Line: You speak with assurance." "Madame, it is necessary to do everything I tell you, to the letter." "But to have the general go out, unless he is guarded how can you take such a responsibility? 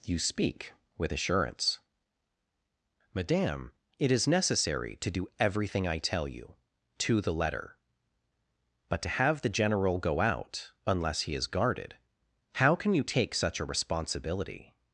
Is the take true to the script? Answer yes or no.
yes